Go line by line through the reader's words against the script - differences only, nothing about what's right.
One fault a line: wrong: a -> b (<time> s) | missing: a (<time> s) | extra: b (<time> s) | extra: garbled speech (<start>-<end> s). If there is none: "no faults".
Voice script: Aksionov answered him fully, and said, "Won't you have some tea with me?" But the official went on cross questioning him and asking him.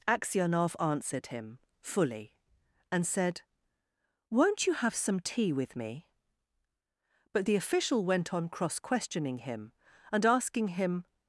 no faults